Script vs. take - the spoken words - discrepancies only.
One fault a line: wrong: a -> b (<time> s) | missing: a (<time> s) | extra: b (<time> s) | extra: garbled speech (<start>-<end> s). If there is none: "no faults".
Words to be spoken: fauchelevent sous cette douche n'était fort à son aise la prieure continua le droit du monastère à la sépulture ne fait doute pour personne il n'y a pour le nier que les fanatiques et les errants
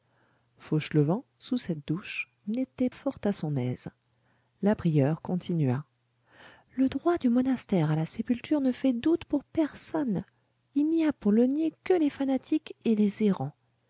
no faults